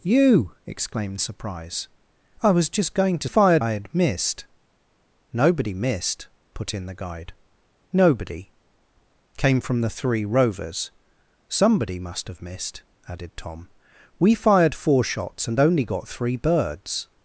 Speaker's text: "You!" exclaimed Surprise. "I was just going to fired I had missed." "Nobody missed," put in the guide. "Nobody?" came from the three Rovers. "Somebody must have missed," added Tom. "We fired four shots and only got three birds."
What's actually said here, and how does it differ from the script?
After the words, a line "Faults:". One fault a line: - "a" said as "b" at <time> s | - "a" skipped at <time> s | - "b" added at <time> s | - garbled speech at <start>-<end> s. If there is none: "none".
"You!" exclaimed Surprise. "I was just going to fired I had missed." "Nobody missed," put in the guide. "Nobody?" came from the three Rovers. "Somebody must have missed," added Tom. "We fired four shots and only got three birds."
Faults:
none